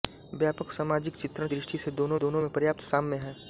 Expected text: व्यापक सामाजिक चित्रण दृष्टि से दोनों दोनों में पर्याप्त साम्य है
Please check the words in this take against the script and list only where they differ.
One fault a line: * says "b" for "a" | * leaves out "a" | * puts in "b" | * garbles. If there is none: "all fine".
all fine